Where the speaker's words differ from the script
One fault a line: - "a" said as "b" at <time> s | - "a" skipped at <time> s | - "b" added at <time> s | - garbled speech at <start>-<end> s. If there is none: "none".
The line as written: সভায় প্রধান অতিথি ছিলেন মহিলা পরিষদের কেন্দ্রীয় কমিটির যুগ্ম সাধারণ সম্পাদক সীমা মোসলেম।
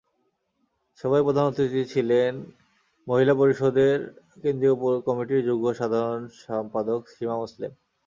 none